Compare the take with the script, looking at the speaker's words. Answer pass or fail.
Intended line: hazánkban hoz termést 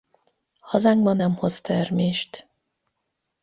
fail